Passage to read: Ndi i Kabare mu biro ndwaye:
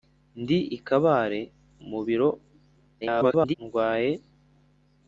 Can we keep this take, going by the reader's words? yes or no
no